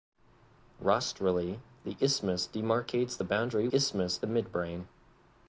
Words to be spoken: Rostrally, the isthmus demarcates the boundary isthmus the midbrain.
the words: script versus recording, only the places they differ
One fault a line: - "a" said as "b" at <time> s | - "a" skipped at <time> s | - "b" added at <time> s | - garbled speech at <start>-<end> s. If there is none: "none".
none